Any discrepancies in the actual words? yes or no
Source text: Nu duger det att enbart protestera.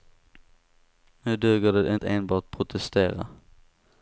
no